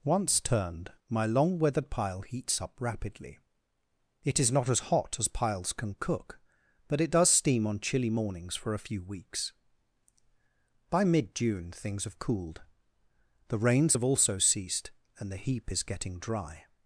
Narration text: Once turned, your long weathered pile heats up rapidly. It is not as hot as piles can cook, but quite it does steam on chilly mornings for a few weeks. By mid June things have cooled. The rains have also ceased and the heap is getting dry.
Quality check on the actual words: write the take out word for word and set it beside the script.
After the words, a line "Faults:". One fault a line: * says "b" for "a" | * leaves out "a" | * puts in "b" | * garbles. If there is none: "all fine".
Once turned, my long weathered pile heats up rapidly. It is not as hot as piles can cook, but it does steam on chilly mornings for a few weeks. By mid June things have cooled. The rains have also ceased and the heap is getting dry.
Faults:
* says "my" for "your"
* leaves out "quite"